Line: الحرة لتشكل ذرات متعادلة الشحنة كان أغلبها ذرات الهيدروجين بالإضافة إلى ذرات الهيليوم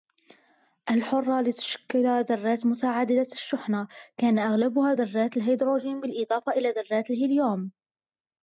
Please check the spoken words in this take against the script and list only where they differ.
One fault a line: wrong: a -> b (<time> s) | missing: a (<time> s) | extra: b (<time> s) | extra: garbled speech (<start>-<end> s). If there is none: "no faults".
no faults